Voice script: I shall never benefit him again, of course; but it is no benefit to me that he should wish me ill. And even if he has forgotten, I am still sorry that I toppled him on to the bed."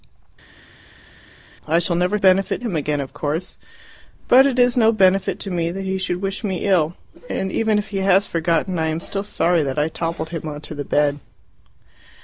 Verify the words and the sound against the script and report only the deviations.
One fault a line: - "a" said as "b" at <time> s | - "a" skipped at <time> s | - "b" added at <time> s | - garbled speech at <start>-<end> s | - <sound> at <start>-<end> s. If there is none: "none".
none